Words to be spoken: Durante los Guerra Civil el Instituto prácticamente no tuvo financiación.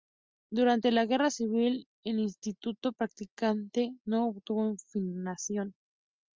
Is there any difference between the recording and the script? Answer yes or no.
yes